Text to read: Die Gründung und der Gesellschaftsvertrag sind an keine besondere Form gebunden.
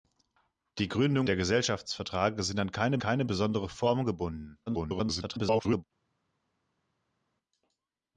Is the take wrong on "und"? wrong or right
wrong